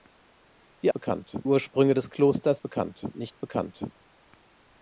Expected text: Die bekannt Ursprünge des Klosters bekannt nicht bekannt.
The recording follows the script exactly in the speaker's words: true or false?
true